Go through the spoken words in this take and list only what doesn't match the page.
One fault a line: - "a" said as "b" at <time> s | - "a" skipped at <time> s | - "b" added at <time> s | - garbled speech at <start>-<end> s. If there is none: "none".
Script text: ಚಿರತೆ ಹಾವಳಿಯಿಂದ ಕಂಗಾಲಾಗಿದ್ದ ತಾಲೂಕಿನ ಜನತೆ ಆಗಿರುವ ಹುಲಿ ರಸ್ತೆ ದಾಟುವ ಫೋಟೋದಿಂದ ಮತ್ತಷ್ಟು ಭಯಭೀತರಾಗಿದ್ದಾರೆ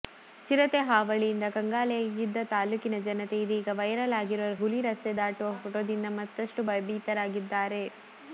- "ಇದೀಗ ವೈರಲ್" added at 3.4 s